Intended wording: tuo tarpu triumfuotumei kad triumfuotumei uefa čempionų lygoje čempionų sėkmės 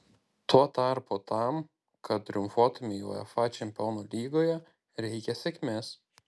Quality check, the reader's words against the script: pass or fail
fail